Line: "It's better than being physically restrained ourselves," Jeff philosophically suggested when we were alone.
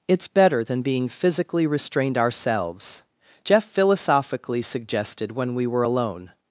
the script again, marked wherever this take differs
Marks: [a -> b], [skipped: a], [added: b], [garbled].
"It's better than being physically restrained ourselves," Jeff philosophically suggested when we were alone.